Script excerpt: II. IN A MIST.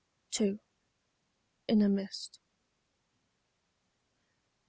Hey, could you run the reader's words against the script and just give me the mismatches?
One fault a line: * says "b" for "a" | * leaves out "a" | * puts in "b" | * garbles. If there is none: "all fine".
all fine